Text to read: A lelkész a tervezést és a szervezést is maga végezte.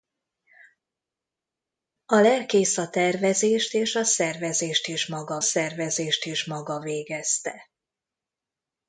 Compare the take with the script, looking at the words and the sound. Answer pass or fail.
fail